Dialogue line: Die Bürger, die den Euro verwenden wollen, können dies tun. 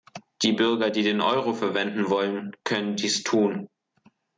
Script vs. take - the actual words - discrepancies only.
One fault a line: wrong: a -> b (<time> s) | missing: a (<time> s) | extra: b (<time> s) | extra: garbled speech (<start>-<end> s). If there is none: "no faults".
no faults